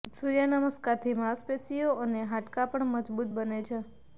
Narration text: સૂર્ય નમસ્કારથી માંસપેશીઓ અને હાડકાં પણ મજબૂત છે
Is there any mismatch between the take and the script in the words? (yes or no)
yes